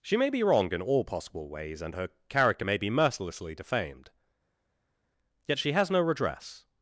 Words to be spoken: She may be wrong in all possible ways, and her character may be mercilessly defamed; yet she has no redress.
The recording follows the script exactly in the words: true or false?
true